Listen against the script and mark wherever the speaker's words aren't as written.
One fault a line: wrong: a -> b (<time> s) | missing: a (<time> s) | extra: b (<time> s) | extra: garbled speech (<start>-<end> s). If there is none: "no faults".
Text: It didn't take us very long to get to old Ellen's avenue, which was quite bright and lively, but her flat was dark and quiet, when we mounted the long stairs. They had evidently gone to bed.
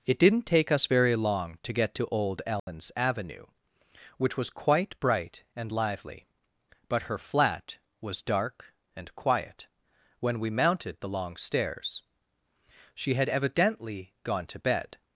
wrong: They -> She (12.9 s)